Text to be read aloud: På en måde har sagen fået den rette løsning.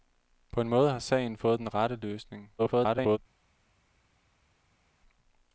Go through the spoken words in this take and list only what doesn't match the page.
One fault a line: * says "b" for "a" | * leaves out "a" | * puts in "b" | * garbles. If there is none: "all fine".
* garbles